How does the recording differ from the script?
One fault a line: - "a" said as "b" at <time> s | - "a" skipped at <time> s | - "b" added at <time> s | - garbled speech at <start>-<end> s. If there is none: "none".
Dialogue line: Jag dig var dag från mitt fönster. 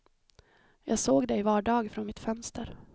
- "såg" added at 1.0 s